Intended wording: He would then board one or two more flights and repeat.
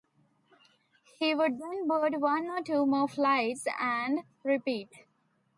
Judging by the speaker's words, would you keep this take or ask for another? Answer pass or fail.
pass